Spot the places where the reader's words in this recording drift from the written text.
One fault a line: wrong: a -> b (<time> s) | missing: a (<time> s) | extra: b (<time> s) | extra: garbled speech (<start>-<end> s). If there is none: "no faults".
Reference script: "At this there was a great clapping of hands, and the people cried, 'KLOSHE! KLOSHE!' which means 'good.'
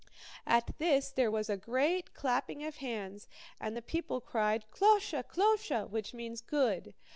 no faults